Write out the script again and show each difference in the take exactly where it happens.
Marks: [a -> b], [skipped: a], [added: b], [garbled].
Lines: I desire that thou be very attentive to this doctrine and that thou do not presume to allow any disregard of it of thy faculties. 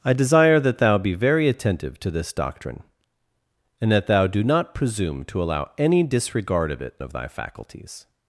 I desire that thou be very attentive to this doctrine and that thou do not presume to allow any disregard of it of thy faculties.